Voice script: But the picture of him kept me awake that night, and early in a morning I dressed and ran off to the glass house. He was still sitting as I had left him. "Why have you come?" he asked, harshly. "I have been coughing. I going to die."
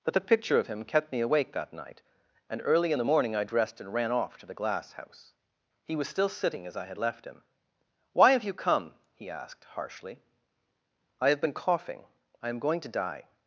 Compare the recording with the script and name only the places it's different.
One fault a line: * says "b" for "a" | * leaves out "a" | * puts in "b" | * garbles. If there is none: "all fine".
* says "the" for "a"
* puts in "am"